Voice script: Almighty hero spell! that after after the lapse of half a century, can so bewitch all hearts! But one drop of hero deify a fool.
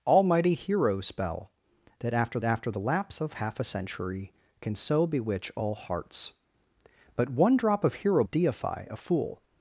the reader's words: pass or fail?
pass